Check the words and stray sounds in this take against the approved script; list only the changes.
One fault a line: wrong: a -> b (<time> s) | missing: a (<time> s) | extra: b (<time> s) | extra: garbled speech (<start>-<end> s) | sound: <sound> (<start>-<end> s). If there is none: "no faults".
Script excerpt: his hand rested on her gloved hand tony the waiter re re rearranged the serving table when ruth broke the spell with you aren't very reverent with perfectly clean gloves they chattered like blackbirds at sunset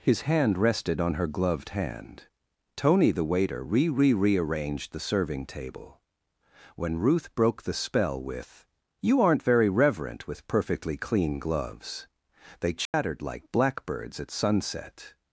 sound: dropout (12.9-12.9 s)